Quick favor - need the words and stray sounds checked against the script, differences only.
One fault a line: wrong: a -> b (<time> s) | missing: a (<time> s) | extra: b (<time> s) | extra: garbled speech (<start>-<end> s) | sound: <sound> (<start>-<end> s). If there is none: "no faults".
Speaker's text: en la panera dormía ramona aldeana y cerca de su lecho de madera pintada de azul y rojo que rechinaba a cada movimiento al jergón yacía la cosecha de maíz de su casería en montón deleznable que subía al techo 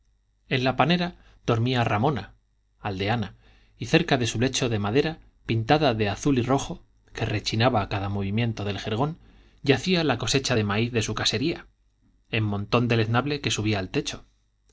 wrong: al -> del (8.7 s)